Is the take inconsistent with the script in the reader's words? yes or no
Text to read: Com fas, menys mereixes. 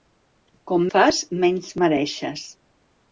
no